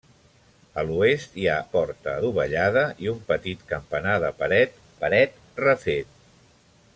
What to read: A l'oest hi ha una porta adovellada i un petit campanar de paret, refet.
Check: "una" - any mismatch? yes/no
yes